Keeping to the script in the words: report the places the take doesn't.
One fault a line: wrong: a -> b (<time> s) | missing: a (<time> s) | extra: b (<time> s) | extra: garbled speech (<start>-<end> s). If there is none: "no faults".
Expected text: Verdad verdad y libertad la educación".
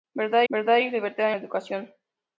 no faults